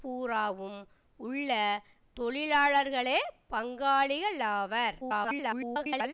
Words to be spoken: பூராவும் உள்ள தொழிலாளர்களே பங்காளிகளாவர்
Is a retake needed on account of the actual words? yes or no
yes